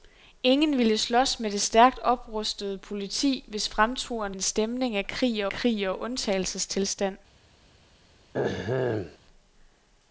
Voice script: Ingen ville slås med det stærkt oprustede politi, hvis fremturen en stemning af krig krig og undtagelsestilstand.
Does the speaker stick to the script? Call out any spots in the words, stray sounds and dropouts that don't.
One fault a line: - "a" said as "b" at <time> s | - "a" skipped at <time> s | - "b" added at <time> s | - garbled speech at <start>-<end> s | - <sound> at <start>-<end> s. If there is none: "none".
- throat clearing at 8.3-9.2 s